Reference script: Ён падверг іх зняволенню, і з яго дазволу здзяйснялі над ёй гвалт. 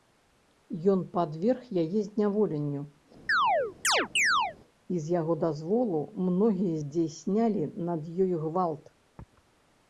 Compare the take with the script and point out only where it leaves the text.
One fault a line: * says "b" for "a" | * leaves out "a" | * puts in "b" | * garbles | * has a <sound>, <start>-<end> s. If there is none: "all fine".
* says "яе" for "іх"
* has a chirp, 3.3-4.6 s
* puts in "многія"